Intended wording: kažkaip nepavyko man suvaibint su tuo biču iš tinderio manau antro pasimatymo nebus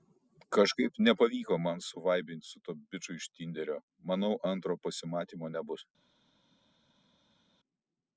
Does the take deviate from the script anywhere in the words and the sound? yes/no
no